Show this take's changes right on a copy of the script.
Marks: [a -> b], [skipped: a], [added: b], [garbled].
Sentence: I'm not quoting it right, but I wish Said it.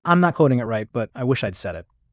I'm not quoting it right, but I wish [added: I'd] Said it.